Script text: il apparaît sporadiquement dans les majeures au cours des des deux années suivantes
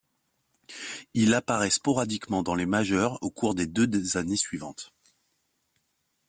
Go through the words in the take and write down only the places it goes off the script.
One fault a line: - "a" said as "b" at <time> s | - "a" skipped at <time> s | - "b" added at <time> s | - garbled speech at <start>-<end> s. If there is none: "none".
- "des" skipped at 3.7 s